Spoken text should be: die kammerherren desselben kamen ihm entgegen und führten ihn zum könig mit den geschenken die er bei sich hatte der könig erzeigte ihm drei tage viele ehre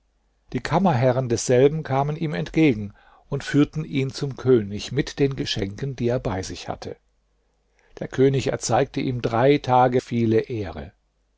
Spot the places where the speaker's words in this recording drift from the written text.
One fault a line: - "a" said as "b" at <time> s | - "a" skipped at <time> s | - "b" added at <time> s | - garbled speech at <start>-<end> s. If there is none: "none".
none